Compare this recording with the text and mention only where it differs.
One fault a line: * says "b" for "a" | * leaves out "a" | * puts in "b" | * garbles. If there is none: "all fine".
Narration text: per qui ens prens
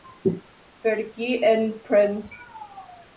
all fine